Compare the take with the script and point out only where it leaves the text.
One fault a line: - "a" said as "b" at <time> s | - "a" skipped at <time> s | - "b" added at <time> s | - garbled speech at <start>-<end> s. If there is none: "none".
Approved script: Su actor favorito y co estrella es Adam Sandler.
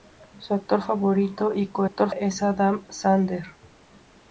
- "estrella" said as "actor" at 1.8 s